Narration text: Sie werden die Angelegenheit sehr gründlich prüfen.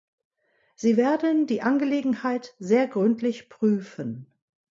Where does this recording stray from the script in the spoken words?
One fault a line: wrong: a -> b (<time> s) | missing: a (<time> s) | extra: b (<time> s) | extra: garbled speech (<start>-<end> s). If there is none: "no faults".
no faults